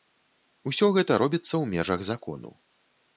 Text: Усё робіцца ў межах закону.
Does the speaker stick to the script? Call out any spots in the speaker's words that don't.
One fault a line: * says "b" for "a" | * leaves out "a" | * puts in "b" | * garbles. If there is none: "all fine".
* puts in "гэта"